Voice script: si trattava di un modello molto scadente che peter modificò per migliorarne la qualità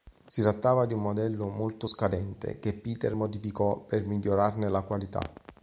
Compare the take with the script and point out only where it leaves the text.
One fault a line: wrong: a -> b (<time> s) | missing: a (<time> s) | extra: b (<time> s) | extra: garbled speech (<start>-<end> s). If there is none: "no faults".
no faults